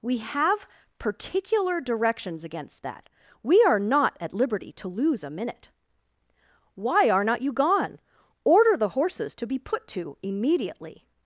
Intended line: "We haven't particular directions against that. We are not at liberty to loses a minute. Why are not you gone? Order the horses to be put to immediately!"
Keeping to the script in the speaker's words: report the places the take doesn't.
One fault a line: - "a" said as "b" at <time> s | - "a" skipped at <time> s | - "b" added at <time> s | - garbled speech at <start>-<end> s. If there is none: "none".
- "haven't" said as "have" at 0.2 s
- "loses" said as "lose" at 4.9 s